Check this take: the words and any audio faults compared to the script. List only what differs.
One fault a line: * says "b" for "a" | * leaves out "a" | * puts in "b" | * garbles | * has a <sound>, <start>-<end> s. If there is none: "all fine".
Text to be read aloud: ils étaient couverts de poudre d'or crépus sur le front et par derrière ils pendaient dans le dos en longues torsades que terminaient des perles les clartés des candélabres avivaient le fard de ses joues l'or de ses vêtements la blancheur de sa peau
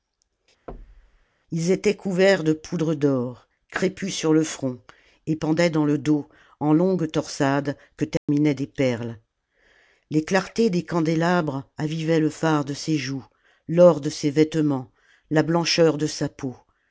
* has a thud, 0.7-1.3 s
* leaves out "par derrière ils"
* has a dropout, 8.2-8.3 s